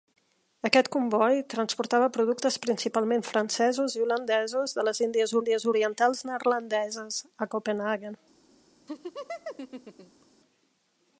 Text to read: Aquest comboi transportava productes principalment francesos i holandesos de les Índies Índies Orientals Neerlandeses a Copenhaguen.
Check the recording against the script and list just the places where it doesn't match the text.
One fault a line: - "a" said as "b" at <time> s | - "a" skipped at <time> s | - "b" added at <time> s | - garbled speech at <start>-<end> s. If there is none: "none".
none